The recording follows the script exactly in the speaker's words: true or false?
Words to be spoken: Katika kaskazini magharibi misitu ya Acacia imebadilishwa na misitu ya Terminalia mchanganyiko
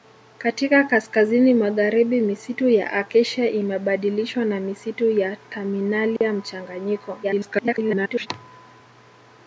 false